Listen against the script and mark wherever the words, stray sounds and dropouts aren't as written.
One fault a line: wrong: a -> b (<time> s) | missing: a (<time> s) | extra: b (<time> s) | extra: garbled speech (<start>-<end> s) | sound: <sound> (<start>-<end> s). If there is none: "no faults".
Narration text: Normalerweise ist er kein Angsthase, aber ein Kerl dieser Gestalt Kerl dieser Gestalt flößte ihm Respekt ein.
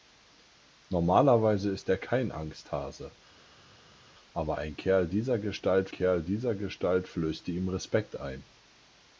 no faults